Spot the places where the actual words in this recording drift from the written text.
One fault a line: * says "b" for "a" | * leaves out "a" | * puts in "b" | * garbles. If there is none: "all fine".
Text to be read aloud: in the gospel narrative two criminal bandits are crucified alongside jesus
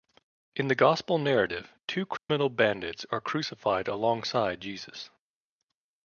all fine